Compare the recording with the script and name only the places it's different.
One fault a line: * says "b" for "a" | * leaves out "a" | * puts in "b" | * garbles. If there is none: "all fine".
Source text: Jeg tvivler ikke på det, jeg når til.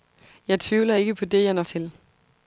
all fine